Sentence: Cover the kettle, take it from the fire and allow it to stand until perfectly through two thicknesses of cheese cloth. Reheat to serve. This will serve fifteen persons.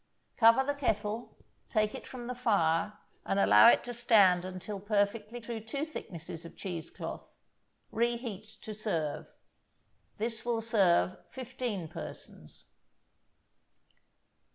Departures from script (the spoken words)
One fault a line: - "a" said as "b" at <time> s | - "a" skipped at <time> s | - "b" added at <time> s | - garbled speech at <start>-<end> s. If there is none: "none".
none